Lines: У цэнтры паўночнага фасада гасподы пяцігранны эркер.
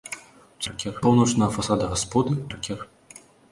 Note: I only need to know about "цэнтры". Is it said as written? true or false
false